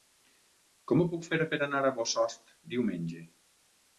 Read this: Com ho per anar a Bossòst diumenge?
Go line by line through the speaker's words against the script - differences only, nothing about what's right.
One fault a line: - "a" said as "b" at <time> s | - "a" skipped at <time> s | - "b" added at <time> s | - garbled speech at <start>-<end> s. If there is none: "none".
- "puc fer" added at 1.1 s